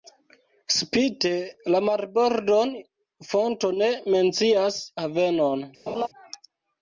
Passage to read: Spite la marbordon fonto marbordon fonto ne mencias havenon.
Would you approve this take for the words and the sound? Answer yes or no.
no